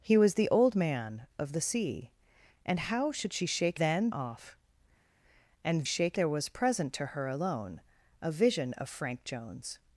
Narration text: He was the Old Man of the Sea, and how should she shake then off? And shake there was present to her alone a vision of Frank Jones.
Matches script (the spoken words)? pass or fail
pass